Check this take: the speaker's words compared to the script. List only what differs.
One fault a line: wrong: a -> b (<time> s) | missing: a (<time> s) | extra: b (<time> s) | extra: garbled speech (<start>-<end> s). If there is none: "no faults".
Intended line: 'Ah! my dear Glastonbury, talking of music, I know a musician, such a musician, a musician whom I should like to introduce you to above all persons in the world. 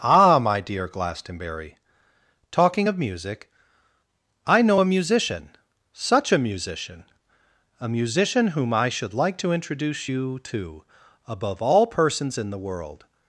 no faults